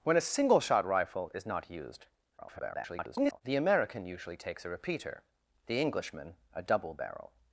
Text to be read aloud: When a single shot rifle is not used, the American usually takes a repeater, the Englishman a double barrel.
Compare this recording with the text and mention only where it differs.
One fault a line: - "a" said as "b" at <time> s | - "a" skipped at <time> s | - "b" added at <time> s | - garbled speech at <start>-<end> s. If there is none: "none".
- garbled speech at 2.4-3.4 s